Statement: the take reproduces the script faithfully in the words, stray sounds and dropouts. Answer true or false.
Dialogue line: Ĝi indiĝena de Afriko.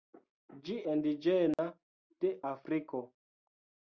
false